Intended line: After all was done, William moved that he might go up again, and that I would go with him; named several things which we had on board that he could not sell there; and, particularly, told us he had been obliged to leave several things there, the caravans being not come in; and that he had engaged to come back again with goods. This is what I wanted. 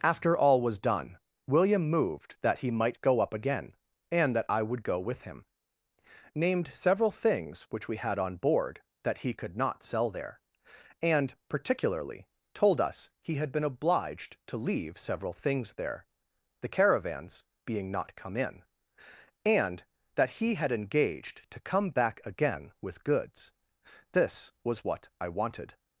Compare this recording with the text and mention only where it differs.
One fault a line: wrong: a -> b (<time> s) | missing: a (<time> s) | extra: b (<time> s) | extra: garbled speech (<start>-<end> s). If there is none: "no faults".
wrong: is -> was (24.6 s)